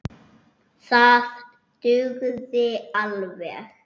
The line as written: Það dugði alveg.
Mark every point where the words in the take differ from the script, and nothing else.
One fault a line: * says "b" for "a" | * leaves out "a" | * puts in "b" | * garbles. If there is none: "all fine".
all fine